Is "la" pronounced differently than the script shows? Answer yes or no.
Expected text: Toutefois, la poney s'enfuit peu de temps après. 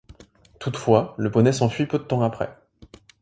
yes